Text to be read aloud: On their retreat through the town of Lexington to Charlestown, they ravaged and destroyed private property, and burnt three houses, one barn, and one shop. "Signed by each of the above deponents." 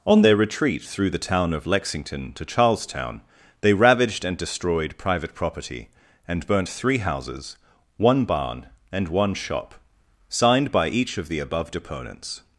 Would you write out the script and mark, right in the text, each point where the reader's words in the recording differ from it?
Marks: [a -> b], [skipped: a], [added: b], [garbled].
On their retreat through the town of Lexington to Charlestown, they ravaged and destroyed private property, and burnt three houses, one barn, and one shop. "Signed by each of the above deponents."